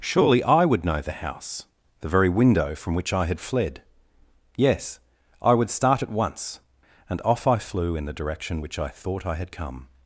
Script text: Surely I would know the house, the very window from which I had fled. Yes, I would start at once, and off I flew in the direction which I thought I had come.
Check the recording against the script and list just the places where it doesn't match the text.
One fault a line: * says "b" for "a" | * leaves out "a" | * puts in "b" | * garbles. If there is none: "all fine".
all fine